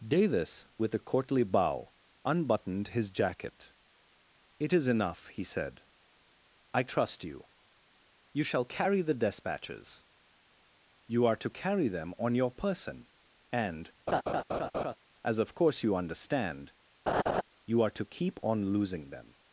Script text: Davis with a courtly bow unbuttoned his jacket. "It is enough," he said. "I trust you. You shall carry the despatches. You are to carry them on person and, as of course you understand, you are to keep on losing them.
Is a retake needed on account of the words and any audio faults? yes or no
yes